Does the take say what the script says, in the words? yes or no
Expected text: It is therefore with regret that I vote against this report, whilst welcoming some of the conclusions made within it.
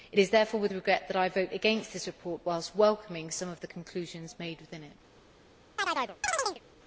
yes